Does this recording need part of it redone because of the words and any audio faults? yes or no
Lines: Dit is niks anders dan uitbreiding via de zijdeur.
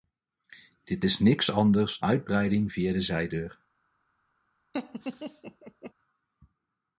yes